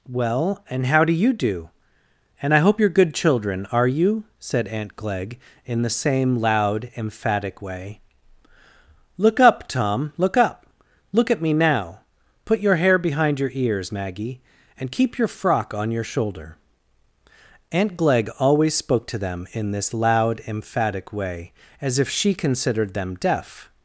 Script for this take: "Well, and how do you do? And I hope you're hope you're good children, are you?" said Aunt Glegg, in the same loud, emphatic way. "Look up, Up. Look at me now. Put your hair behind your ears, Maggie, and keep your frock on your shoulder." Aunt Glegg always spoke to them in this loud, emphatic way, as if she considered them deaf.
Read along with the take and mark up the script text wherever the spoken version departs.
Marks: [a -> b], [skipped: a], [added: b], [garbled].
"Well, and how do you do? And I hope you're [skipped: hope you're] good children, are you?" said Aunt Glegg, in the same loud, emphatic way. "Look up, [added: Tom look] Up. Look at me now. Put your hair behind your ears, Maggie, and keep your frock on your shoulder." Aunt Glegg always spoke to them in this loud, emphatic way, as if she considered them deaf.